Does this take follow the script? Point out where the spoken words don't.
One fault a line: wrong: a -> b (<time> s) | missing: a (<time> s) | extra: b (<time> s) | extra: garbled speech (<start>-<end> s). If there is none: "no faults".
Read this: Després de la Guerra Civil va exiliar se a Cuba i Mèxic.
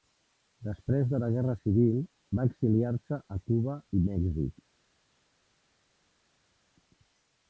no faults